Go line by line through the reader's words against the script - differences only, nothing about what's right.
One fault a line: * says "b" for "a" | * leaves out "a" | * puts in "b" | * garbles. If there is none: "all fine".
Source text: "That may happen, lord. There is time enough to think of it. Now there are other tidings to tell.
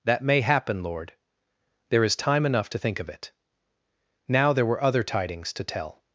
* says "were" for "are"